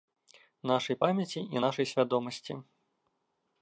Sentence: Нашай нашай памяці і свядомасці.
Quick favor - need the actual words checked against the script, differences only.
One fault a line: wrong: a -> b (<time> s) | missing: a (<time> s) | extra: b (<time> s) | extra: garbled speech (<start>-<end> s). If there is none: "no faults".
missing: нашай (1.0 s)
extra: нашай (1.6 s)